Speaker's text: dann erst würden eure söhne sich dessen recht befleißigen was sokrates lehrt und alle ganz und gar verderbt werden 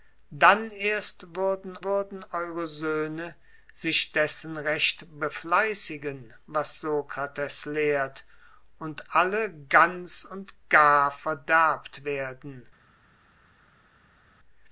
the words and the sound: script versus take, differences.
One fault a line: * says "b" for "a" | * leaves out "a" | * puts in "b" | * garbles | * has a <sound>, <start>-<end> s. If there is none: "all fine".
* puts in "würden"